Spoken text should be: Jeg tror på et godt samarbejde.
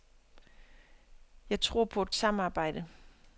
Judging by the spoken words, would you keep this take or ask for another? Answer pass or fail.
fail